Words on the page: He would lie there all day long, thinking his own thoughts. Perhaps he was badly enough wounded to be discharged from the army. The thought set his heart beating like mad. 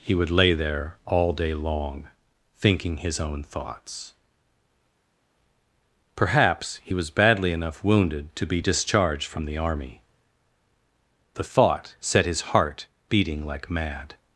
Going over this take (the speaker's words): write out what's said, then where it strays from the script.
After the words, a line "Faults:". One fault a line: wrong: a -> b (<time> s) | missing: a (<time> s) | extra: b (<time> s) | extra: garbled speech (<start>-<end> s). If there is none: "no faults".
He would lay there all day long, thinking his own thoughts. Perhaps he was badly enough wounded to be discharged from the army. The thought set his heart beating like mad.
Faults:
wrong: lie -> lay (0.3 s)